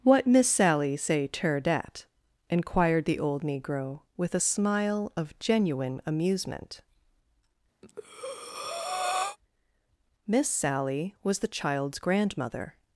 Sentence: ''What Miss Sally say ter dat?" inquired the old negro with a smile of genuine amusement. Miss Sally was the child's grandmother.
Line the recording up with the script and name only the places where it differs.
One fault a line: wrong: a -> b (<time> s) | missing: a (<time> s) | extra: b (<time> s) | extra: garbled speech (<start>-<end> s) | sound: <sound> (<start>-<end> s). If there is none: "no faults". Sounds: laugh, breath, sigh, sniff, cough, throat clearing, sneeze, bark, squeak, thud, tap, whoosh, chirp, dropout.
sound: breath (7.8-9.4 s)